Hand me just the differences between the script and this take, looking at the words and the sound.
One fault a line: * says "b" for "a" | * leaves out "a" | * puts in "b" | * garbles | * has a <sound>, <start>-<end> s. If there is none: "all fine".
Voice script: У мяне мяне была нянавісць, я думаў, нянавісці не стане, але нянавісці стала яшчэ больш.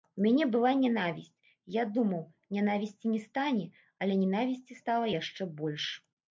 * leaves out "мяне"